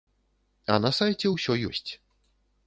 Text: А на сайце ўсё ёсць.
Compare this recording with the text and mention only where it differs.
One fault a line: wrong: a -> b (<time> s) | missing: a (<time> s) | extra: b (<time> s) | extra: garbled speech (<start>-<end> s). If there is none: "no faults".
no faults